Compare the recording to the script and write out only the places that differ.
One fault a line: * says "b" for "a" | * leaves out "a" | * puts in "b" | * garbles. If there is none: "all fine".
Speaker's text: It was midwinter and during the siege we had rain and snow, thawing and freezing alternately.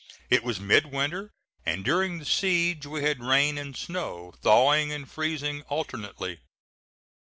all fine